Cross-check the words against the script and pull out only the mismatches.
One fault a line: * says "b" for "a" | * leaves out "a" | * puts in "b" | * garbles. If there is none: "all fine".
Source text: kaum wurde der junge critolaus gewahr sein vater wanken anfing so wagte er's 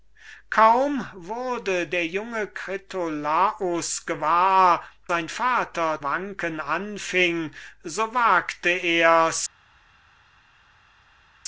all fine